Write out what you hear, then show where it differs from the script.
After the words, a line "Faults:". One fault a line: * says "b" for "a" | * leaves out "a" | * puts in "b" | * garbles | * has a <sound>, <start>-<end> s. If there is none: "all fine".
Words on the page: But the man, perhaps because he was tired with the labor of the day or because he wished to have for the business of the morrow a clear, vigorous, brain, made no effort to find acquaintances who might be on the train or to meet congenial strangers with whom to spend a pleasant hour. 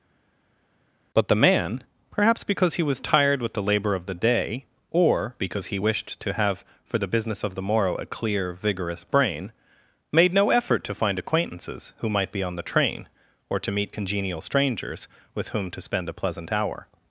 But the man, perhaps because he was tired with the labor of the day or because he wished to have for the business of the morrow a clear, vigorous, brain, made no effort to find acquaintances who might be on the train or to meet congenial strangers with whom to spend a pleasant hour.
Faults:
all fine